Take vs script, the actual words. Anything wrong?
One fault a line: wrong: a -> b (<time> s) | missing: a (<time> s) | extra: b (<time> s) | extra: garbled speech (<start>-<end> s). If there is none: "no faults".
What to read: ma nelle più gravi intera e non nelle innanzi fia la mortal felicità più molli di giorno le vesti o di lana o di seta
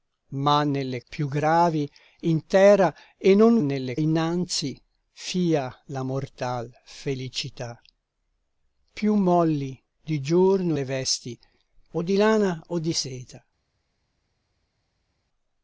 no faults